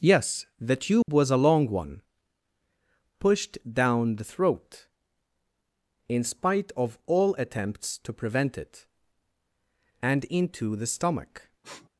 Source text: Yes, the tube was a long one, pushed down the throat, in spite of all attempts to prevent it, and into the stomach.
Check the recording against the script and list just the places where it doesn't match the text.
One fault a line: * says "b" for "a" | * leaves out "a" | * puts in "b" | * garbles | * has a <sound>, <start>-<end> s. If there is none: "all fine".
* has a dropout, 1.0-1.1 s
* has a sniff, 11.6-11.9 s